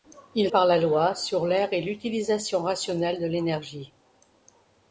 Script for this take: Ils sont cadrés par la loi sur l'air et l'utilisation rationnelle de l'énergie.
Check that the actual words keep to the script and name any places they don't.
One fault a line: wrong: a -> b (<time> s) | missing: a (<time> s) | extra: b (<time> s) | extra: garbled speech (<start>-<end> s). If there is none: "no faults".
missing: sont cadrés (0.5 s)